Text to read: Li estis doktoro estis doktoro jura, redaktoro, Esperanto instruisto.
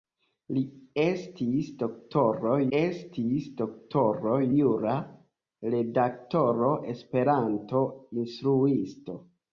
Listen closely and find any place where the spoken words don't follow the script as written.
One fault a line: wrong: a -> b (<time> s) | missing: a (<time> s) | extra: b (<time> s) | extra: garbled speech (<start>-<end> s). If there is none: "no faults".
no faults